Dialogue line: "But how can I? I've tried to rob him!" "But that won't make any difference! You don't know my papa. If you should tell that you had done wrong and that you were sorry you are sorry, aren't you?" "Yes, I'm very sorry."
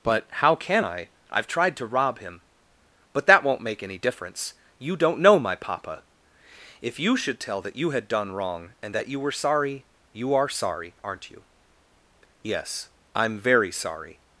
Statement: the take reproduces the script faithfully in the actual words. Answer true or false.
true